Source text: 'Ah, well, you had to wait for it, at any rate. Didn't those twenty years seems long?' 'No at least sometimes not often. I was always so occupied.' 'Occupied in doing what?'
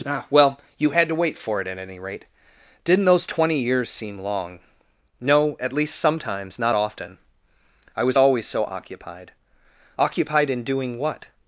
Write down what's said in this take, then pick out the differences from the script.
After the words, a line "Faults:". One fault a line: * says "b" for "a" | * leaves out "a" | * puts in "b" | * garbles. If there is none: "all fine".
'Ah, well, you had to wait for it, at any rate. Didn't those twenty years seem long?' 'No at least sometimes not often. I was always so occupied.' 'Occupied in doing what?'
Faults:
* says "seem" for "seems"